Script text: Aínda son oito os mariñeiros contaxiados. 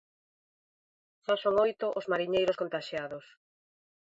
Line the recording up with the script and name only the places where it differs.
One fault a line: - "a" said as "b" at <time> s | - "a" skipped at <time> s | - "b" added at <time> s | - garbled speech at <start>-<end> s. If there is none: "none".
- "Aínda" said as "Xa" at 1.2 s